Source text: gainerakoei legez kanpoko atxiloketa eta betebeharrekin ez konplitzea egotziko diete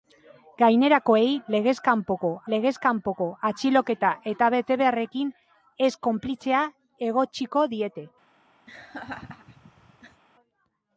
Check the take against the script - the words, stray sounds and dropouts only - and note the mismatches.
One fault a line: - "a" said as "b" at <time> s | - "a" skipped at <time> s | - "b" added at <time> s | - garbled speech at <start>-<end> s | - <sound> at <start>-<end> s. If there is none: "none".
- "legez kanpoko" added at 2.5 s
- laugh at 8.7-10.2 s